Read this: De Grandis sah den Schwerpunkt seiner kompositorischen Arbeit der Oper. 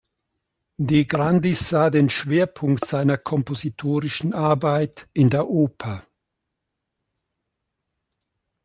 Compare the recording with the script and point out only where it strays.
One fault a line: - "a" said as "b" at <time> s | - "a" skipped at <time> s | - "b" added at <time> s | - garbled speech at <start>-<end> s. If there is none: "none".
- "in" added at 5.1 s